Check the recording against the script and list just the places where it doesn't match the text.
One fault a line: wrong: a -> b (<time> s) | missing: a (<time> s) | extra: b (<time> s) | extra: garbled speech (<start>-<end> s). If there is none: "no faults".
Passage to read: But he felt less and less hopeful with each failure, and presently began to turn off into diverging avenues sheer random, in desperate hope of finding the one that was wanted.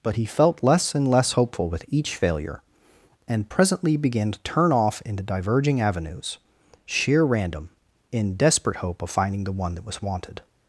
no faults